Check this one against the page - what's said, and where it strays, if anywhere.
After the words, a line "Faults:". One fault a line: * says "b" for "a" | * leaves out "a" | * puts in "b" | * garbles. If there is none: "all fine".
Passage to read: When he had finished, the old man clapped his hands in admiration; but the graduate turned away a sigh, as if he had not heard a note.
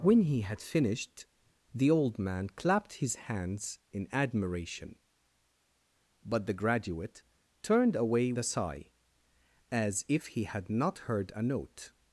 When he had finished, the old man clapped his hands in admiration; but the graduate turned away a sigh, as if he had not heard a note.
Faults:
all fine